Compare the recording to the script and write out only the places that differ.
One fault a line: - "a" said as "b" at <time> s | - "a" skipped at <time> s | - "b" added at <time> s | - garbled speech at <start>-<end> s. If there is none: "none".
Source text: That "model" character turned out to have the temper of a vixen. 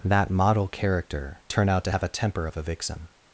- "turned" said as "turn" at 1.5 s
- "the" said as "a" at 2.0 s